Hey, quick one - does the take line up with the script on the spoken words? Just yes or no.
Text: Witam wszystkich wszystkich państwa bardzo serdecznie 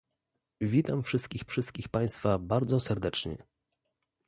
yes